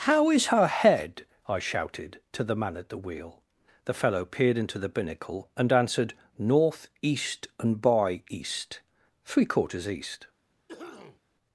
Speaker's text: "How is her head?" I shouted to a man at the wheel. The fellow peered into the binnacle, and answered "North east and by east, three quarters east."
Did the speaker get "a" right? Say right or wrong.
wrong